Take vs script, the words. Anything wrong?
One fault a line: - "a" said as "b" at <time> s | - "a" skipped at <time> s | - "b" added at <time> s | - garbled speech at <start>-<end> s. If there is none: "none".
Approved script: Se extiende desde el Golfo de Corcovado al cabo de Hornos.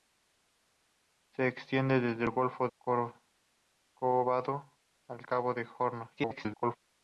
- "de" skipped at 2.7 s
- garbled speech at 6.2-6.8 s